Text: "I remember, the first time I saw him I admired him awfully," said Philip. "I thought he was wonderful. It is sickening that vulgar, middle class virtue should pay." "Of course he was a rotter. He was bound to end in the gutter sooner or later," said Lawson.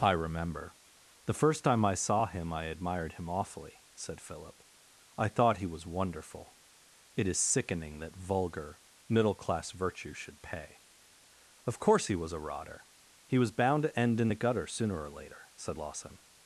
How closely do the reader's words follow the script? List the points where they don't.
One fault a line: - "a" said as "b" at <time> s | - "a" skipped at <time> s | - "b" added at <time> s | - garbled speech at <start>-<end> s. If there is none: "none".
none